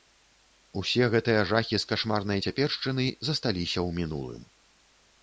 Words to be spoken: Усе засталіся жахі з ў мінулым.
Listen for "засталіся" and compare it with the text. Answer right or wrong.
wrong